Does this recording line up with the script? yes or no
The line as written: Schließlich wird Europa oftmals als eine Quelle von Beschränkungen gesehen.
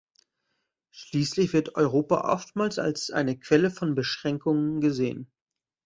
yes